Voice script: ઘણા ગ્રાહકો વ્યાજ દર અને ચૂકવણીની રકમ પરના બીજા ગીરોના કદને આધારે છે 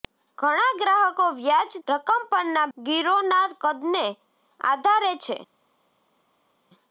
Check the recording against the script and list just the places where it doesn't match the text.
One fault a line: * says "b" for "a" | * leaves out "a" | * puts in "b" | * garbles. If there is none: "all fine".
* leaves out "દર અને ચૂકવણીની"
* leaves out "બીજા"